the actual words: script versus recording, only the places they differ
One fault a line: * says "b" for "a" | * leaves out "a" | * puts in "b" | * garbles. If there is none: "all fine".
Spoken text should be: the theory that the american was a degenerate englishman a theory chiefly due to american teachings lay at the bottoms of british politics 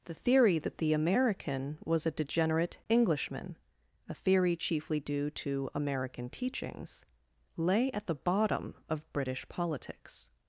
* says "bottom" for "bottoms"